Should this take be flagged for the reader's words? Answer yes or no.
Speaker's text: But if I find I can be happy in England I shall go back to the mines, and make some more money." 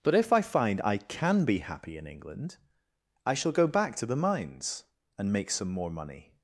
no